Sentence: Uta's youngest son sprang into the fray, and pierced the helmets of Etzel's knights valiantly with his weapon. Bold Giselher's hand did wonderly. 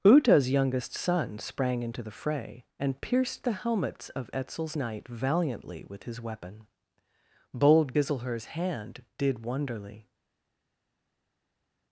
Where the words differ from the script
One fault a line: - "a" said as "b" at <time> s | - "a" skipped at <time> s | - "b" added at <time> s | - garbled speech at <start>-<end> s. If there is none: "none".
- "knights" said as "knight" at 4.7 s